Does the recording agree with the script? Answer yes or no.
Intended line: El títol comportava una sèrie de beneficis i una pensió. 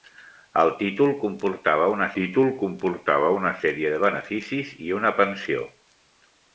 no